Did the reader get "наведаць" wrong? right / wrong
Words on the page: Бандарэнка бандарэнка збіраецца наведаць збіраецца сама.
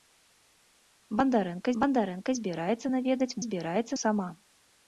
right